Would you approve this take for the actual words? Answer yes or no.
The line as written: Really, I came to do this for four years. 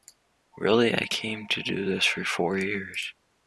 yes